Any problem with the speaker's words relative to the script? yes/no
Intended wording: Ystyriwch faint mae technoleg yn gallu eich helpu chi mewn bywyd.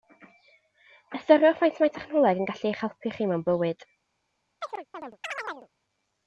no